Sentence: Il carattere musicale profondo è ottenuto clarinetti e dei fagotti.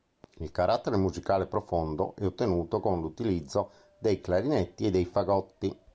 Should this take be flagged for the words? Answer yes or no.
yes